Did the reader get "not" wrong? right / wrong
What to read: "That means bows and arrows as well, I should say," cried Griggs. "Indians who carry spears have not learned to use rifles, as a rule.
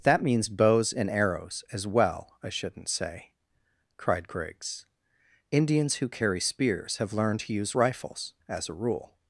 wrong